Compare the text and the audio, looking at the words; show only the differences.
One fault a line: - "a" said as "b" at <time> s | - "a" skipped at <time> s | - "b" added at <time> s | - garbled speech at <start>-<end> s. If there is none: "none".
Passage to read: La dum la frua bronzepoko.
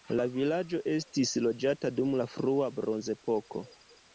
- "vilaĝo estis loĝata" added at 0.3 s